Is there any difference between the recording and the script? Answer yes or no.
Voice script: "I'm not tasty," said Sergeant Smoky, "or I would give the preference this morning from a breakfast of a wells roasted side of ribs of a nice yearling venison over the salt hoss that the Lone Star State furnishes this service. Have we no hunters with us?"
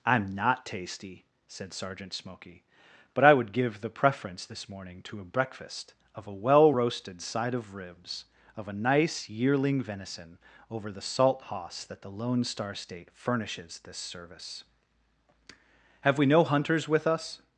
yes